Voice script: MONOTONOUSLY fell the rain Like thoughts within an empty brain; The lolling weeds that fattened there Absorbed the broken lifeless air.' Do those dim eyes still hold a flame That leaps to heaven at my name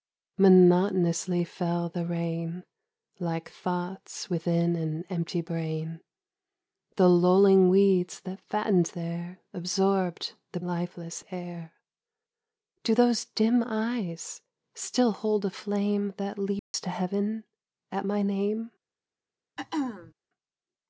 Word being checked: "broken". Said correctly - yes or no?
no